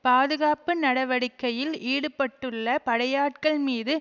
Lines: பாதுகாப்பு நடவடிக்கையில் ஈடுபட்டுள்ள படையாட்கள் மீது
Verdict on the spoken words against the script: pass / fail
pass